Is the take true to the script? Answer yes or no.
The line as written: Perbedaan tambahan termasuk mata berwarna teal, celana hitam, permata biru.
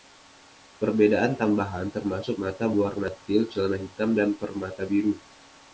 no